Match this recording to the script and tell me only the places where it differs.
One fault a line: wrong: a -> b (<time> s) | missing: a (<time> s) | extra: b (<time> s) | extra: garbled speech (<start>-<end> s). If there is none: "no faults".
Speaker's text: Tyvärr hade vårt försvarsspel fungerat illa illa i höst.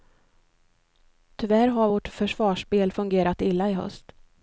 wrong: hade -> har (1.7 s)
missing: illa (3.7 s)